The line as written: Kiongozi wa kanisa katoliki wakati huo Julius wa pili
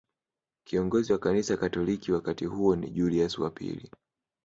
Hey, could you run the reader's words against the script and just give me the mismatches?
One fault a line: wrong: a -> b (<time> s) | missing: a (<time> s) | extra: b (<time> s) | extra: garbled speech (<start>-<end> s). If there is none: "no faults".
extra: ni (2.7 s)